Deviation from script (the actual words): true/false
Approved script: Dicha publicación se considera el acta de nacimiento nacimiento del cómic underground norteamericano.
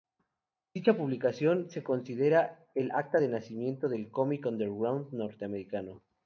true